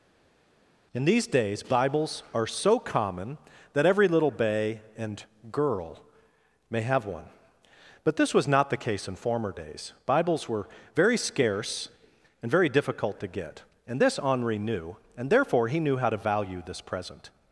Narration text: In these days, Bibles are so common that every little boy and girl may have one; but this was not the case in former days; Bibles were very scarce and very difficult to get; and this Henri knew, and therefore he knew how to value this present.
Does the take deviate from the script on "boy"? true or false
true